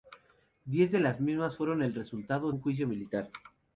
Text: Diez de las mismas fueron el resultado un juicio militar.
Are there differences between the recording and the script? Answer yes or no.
no